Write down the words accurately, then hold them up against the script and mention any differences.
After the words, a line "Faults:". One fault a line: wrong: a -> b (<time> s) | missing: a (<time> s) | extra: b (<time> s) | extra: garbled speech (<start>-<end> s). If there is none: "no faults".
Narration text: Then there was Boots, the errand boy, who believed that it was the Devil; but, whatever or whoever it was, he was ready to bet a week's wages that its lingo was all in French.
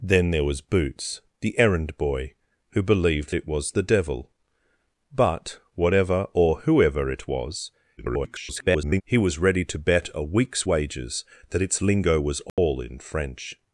Then there was Boots, the errand boy, who believed it was the Devil; but, whatever or whoever it was, [garbled] he was ready to bet a week's wages that its lingo was all in French.
Faults:
missing: that (3.4 s)
extra: garbled speech (8.0-9.0 s)